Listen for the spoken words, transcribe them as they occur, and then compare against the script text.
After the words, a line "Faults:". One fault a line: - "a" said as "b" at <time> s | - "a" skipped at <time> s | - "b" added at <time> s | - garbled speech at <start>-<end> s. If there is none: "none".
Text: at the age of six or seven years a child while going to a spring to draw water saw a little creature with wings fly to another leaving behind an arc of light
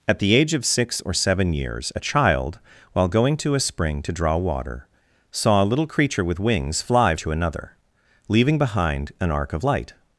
at the age of six or seven years a child while going to a spring to draw water saw a little creature with wings fly to another leaving behind an arc of light
Faults:
none